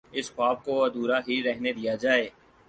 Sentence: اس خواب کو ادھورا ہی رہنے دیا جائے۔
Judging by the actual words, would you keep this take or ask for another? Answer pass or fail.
pass